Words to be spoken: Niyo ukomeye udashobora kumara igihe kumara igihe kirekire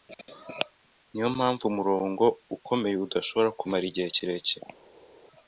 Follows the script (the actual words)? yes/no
no